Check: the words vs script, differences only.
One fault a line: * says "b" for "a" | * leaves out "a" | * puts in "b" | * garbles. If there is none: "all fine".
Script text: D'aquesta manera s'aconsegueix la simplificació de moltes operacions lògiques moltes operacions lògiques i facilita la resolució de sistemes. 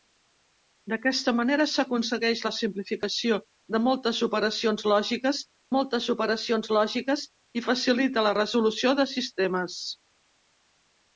all fine